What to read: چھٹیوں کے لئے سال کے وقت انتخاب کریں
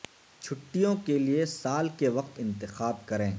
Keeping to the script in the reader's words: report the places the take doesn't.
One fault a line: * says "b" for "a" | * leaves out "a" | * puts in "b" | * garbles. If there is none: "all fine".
all fine